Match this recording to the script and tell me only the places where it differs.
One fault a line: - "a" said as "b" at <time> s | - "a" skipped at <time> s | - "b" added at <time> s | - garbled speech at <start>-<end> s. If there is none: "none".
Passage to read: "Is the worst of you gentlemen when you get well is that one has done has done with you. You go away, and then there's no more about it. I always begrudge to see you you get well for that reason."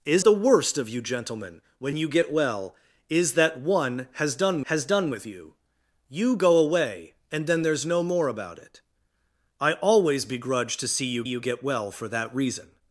none